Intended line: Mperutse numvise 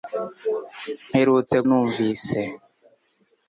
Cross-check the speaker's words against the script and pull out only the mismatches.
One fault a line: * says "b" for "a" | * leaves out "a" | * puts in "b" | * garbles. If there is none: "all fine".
all fine